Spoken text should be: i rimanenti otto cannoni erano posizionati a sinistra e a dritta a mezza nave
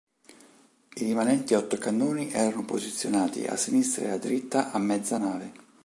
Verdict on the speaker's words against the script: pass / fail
pass